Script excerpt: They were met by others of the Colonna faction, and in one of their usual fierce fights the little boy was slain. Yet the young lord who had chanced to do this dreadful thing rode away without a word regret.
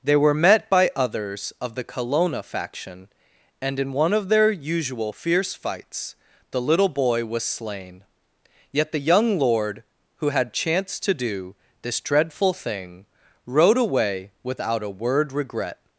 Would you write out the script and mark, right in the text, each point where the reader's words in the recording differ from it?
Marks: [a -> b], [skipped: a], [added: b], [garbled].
They were met by others of the Colonna faction, and in one of their usual fierce fights the little boy was slain. Yet the young lord who had chanced to do this dreadful thing rode away without a word regret.